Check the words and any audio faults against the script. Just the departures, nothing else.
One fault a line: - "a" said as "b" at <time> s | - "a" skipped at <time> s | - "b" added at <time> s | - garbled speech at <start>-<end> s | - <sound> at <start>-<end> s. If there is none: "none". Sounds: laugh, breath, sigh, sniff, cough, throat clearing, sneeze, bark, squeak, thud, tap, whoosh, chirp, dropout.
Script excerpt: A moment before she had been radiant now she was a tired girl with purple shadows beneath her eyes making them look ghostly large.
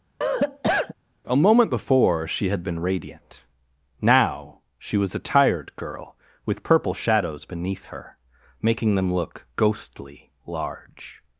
- cough at 0.2-0.9 s
- "eyes" skipped at 8.2 s